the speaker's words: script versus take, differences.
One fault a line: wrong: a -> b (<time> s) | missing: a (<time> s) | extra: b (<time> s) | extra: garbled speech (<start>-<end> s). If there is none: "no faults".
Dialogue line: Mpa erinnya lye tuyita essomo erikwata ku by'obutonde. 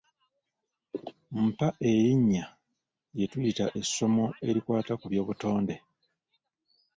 no faults